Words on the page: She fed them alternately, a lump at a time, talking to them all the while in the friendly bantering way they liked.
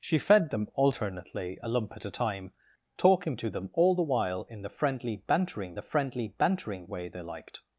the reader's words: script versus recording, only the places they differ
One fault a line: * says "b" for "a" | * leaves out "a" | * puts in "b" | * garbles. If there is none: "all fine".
* puts in "the friendly bantering"